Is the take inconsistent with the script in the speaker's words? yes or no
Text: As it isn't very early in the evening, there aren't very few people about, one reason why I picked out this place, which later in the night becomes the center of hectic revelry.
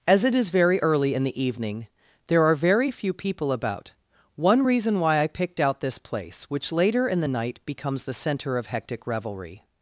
yes